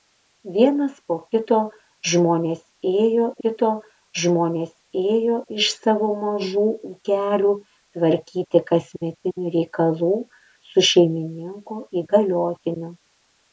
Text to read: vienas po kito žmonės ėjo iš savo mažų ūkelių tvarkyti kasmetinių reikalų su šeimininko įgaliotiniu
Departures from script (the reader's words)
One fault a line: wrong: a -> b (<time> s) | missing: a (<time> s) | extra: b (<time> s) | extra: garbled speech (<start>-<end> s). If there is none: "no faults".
extra: kito žmonės ėjo (3.4 s)